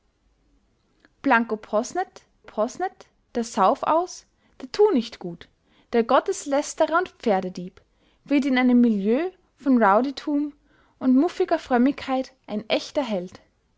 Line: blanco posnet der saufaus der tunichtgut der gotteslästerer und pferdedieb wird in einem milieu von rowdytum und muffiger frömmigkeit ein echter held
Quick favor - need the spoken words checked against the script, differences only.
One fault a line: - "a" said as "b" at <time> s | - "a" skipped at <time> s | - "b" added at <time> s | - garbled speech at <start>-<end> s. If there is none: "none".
- "posnet" added at 2.4 s